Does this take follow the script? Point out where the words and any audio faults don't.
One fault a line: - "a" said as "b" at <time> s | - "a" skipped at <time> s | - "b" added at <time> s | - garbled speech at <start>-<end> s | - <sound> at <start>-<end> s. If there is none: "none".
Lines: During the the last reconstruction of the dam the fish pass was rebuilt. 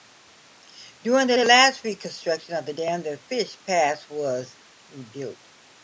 none